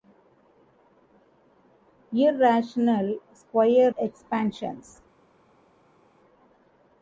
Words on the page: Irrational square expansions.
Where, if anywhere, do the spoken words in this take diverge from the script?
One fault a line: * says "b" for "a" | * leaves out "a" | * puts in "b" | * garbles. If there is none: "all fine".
all fine